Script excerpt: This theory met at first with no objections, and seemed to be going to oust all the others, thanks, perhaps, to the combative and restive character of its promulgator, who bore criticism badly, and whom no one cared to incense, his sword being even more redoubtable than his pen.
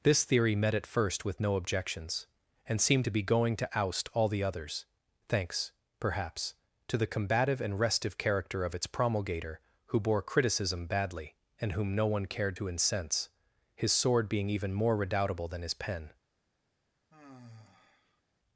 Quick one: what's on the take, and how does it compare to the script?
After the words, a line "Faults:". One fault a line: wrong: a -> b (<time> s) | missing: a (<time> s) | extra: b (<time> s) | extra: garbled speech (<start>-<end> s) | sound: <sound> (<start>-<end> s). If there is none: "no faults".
This theory met at first with no objections, and seemed to be going to oust all the others, thanks, perhaps, to the combative and restive character of its promulgator, who bore criticism badly, and whom no one cared to incense, his sword being even more redoubtable than his pen.
Faults:
sound: sigh (17.1-18.2 s)